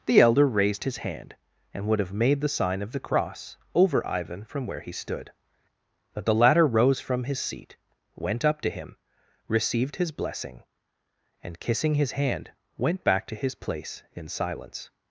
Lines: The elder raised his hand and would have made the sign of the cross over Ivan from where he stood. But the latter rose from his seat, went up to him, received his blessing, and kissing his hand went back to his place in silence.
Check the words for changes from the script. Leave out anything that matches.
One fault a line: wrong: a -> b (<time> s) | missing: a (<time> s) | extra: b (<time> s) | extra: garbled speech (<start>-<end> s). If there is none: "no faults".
no faults